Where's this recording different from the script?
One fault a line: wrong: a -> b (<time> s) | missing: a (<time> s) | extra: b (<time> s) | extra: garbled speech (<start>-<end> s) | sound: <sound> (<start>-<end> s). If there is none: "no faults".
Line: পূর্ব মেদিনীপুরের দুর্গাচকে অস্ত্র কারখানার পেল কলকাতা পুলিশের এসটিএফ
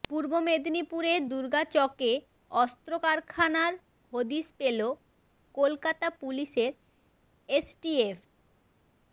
extra: হদিশ (4.1 s)